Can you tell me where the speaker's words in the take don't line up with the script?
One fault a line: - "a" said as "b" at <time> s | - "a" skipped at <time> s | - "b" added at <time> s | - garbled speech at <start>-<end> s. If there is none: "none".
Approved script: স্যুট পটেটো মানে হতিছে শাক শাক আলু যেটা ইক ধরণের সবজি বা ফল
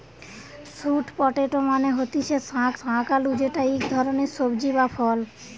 none